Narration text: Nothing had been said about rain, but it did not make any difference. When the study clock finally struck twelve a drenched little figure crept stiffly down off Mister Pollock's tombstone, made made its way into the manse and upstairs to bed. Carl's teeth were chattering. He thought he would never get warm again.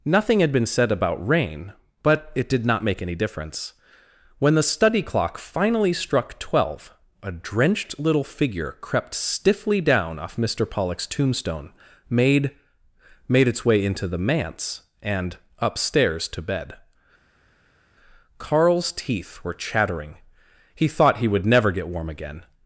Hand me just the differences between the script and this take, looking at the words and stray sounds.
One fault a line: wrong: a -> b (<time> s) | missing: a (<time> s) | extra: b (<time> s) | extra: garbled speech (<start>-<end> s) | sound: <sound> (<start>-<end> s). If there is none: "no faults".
no faults